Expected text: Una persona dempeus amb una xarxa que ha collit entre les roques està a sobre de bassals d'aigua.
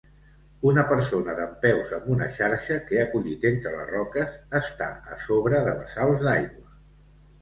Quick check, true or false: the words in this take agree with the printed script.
true